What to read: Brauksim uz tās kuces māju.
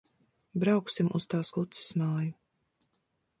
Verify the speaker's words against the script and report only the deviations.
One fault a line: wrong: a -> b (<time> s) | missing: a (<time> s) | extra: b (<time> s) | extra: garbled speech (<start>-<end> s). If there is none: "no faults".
no faults